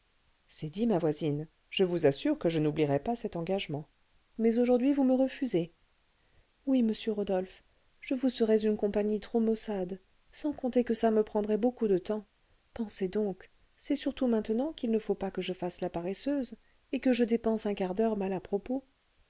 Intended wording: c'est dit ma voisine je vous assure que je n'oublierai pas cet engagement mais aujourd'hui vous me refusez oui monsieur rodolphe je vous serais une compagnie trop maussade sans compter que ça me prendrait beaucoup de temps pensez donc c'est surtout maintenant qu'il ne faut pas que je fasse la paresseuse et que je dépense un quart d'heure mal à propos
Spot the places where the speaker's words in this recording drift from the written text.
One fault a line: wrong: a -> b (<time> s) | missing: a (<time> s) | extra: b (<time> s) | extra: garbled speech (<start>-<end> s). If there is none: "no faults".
no faults